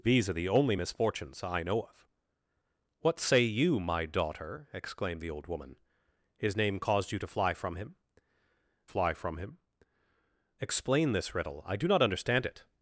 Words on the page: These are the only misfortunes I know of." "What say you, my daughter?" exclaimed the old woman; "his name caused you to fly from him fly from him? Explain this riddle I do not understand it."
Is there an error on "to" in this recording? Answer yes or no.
no